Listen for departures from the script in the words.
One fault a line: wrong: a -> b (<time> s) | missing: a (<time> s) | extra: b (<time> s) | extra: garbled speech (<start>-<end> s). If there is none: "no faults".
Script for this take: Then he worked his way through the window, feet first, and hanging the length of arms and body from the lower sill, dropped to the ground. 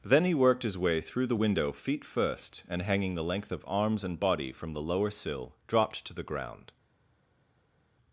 no faults